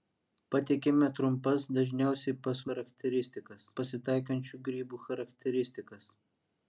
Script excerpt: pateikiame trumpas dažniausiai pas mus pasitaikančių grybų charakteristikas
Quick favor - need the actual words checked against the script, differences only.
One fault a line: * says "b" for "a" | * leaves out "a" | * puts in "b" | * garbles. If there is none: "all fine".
* says "charakteristikas" for "mus"